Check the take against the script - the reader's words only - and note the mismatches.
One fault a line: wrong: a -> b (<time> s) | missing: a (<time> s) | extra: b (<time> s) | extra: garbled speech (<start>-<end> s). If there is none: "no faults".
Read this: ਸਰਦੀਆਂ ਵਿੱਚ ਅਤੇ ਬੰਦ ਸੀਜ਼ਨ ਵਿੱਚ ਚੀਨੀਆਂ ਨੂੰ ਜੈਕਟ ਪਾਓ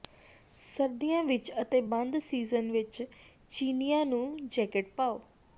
no faults